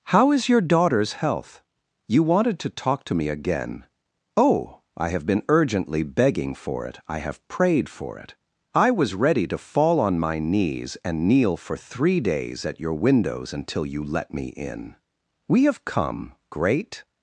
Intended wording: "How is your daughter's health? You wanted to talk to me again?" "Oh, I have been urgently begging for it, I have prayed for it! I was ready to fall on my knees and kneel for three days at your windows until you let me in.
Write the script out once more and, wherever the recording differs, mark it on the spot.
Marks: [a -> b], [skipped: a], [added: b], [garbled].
"How is your daughter's health? You wanted to talk to me again?" "Oh, I have been urgently begging for it, I have prayed for it! I was ready to fall on my knees and kneel for three days at your windows until you let me in. [added: We have come great]